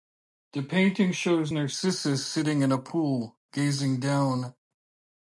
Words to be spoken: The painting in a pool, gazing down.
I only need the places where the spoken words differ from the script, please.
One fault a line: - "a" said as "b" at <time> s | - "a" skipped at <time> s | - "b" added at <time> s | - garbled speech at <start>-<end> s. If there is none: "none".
- "shows Narcissus sitting" added at 1.1 s